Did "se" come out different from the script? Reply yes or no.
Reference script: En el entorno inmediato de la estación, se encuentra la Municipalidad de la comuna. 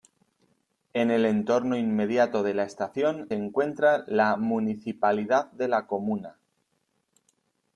yes